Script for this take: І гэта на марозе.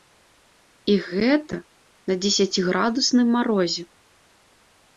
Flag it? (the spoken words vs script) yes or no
yes